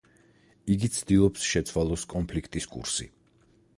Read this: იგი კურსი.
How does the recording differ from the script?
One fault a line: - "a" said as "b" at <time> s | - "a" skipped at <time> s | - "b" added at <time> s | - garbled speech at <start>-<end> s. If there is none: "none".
- "ცდილობს შეცვალოს კონფლიქტის" added at 0.9 s